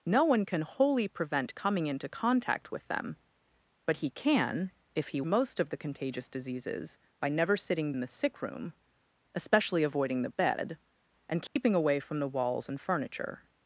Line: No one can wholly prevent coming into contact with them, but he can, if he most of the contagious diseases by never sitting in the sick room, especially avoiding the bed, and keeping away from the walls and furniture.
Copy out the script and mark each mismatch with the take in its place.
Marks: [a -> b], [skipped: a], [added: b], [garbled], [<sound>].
No one can wholly prevent coming into contact with them, but he can, if he most of the contagious diseases by never sitting in the sick room, especially avoiding the bed, and keeping [dropout] away from the walls and furniture.